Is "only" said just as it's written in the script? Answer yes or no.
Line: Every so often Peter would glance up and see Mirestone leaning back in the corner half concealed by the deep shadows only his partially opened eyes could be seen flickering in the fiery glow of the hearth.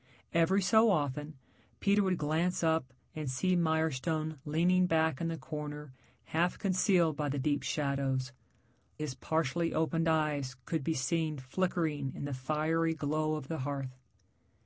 no